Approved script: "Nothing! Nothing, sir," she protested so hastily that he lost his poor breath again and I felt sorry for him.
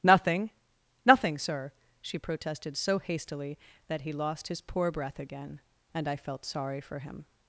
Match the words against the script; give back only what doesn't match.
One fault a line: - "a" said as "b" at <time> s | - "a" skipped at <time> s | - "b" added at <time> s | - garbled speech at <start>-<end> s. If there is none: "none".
none